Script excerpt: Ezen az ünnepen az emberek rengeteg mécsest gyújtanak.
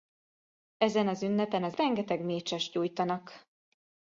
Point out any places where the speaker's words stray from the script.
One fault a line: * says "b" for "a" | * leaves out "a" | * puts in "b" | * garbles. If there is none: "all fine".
* leaves out "emberek"